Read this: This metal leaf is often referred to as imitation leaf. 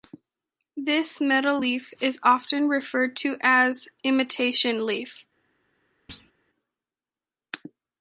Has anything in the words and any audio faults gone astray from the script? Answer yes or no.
yes